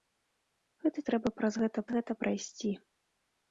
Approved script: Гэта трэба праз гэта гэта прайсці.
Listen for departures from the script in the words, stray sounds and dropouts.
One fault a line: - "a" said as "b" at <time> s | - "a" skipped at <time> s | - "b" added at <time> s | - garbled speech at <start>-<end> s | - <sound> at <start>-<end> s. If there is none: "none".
none